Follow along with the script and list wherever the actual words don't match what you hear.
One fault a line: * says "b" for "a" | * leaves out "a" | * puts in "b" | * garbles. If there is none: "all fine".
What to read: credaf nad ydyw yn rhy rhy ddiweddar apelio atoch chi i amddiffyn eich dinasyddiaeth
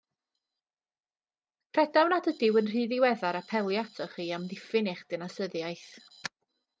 * leaves out "rhy"